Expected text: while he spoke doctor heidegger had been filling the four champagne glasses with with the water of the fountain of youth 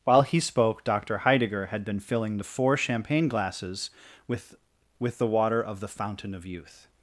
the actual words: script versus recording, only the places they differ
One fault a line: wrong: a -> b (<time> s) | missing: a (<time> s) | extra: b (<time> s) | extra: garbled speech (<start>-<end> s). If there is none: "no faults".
no faults